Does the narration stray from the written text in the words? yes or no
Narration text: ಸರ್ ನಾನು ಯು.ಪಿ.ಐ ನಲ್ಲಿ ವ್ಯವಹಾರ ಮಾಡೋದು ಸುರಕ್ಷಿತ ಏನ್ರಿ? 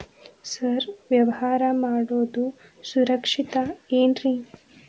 yes